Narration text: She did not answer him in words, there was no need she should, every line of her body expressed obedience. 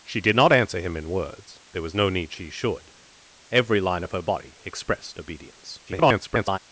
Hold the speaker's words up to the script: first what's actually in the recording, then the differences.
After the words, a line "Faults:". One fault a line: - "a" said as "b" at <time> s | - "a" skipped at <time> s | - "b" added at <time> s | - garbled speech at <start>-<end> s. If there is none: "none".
She did not answer him in words, there was no need she should, every line of her body expressed obedience. [garbled]
Faults:
- garbled speech at 5.9-6.6 s